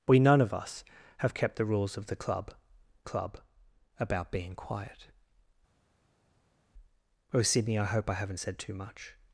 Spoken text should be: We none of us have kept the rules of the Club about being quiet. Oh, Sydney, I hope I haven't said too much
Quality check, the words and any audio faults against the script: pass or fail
fail